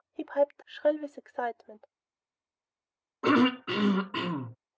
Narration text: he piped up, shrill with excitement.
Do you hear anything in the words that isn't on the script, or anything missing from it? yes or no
yes